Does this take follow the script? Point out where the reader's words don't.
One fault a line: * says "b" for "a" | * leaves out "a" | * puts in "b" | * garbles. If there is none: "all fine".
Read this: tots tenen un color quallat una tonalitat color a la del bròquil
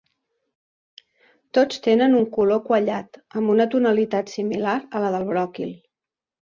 * puts in "amb"
* says "similar" for "color"